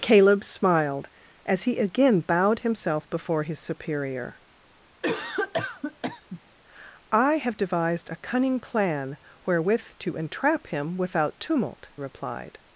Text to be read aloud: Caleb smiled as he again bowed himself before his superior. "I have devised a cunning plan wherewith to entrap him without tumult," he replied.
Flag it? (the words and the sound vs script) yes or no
yes